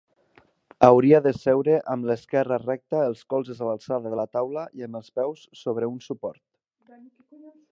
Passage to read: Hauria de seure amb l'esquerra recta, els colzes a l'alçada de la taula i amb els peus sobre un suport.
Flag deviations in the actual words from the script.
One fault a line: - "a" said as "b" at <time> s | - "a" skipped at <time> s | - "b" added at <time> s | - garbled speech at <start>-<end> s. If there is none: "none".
none